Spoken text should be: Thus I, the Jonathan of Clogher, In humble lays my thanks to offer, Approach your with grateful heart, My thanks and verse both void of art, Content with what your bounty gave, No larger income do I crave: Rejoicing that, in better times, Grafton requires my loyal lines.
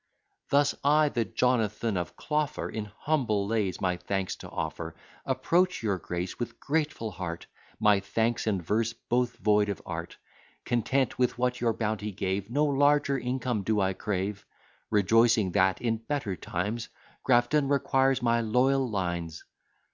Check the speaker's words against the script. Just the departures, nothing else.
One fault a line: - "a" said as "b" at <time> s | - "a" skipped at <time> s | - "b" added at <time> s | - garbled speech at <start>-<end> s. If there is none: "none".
- "grace" added at 6.0 s